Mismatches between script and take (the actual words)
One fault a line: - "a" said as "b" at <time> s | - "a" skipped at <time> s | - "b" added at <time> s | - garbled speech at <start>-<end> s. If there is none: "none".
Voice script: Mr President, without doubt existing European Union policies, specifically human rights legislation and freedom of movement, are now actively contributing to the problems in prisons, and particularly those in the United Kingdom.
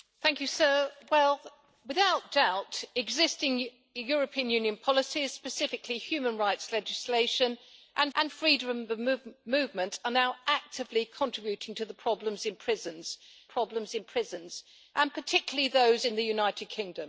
- "and" added at 8.1 s
- "problems in prisons" added at 13.4 s